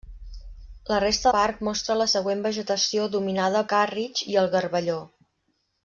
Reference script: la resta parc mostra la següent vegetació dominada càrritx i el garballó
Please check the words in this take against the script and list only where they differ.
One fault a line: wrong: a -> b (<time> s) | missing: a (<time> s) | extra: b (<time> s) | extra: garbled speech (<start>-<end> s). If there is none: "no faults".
no faults